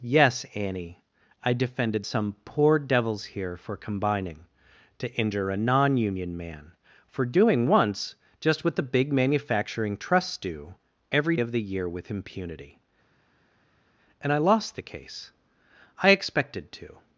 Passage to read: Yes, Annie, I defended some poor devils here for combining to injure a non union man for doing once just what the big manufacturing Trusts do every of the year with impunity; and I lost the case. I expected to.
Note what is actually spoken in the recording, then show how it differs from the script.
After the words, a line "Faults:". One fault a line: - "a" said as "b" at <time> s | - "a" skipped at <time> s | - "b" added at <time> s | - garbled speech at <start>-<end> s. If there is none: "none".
Yes, Annie, I defended some poor devils here for combining to injure a non union man for doing once just what the big manufacturing Trusts do every of the year with impunity; and I lost the case. I expected to.
Faults:
none